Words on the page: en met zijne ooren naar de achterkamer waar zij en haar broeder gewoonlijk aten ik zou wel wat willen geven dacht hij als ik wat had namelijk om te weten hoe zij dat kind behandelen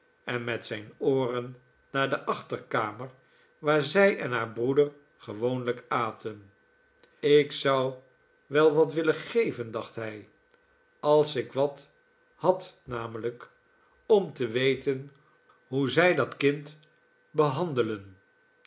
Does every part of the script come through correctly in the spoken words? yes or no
yes